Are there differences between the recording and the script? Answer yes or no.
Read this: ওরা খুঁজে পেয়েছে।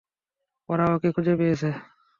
yes